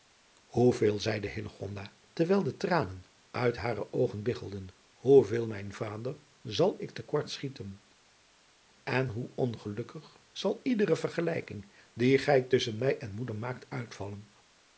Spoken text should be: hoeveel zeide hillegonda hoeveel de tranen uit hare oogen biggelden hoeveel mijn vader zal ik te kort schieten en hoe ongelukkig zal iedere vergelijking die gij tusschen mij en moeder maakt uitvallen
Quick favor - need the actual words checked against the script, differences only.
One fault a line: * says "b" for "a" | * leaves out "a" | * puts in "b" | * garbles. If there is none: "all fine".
* says "terwijl" for "hoeveel"